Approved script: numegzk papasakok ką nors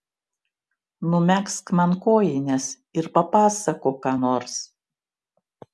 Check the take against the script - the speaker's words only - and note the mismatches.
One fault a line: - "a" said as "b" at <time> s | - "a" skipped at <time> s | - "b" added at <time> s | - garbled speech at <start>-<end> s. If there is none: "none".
- "man kojines ir" added at 1.8 s